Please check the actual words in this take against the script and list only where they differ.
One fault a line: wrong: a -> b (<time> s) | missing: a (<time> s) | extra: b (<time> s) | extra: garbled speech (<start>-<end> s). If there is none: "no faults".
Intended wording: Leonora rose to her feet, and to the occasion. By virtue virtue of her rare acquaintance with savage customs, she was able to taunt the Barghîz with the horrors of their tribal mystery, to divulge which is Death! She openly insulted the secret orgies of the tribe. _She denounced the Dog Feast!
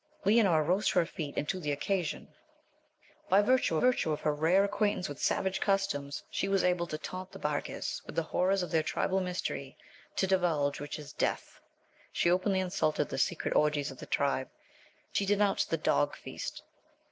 no faults